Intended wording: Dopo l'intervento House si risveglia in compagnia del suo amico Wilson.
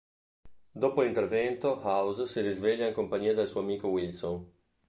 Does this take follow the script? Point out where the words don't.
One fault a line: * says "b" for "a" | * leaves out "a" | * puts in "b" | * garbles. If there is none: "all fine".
all fine